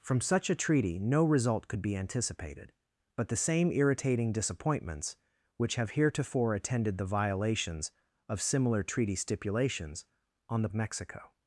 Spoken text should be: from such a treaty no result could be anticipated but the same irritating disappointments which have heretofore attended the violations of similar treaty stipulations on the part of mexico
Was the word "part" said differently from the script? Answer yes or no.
yes